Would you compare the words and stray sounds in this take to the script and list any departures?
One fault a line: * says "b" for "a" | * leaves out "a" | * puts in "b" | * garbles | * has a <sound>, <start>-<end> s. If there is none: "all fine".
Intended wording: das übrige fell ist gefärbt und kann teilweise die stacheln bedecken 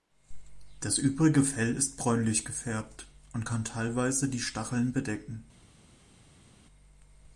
* puts in "bräunlich"